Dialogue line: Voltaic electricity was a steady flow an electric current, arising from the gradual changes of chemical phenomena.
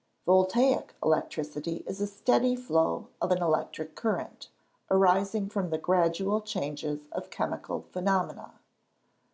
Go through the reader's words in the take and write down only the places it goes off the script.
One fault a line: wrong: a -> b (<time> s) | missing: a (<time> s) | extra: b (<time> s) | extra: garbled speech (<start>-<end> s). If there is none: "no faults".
wrong: was -> is (1.9 s)
extra: of (3.2 s)